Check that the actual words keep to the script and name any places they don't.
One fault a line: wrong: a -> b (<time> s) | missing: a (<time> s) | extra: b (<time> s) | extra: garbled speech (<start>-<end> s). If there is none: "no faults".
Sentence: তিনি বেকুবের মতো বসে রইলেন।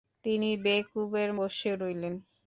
missing: মতো (1.3 s)